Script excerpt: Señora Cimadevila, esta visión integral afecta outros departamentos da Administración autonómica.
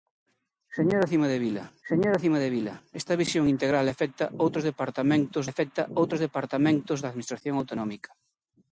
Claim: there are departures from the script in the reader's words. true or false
true